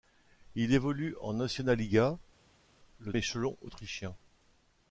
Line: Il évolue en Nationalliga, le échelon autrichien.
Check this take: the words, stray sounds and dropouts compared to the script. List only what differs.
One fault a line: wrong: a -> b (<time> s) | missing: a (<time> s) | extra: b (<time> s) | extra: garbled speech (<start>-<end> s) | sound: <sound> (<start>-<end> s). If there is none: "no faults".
no faults